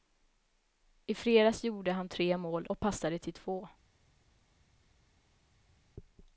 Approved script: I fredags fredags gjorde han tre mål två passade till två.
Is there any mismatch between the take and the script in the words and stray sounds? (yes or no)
yes